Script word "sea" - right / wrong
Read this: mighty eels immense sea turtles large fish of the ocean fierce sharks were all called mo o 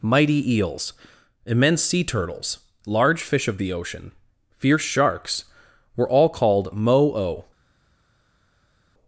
right